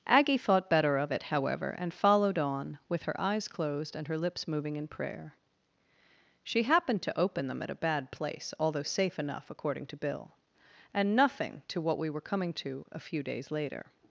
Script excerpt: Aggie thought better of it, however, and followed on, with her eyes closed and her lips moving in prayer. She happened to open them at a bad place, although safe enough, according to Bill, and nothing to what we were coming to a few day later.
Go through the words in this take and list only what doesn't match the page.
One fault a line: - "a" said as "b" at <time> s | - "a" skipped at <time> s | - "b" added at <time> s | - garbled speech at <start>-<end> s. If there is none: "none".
- "day" said as "days" at 13.2 s